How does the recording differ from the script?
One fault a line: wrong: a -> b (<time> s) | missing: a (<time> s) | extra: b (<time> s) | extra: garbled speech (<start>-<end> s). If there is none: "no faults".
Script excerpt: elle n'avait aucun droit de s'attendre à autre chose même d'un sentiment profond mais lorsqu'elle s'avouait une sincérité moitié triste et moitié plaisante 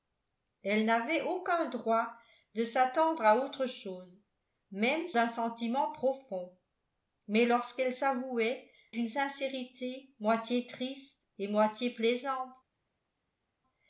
no faults